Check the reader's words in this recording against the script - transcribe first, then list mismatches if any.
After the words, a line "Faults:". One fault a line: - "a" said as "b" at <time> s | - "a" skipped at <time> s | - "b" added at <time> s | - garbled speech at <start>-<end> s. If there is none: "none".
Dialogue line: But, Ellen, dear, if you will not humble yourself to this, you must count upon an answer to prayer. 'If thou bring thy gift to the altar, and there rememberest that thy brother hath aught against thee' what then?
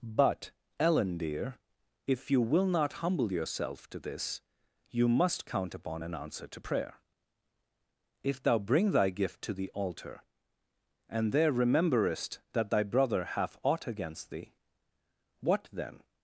But, Ellen, dear, if you will not humble yourself to this, you must count upon an answer to prayer. 'If thou bring thy gift to the altar, and there rememberest that thy brother hath aught against thee' what then?
Faults:
none